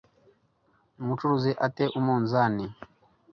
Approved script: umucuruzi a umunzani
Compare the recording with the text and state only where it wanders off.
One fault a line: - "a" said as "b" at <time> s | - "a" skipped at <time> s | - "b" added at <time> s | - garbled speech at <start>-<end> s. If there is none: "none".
- "te" added at 1.8 s